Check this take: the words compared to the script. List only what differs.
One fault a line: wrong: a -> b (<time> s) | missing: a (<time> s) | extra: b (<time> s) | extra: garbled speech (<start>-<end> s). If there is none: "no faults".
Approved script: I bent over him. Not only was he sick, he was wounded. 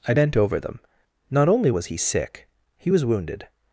wrong: him -> them (0.6 s)